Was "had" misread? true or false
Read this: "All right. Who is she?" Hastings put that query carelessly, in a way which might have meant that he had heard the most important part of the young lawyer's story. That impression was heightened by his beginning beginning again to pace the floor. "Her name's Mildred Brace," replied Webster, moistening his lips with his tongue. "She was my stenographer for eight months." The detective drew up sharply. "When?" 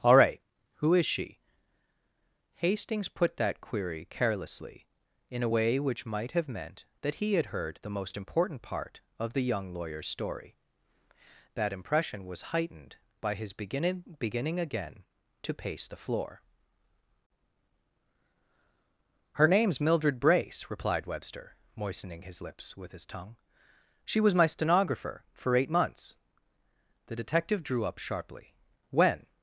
false